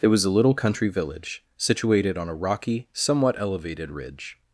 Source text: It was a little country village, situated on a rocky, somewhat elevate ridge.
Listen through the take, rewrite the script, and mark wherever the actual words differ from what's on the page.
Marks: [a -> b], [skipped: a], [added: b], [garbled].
It was a little country village, situated on a rocky, somewhat [elevate -> elevated] ridge.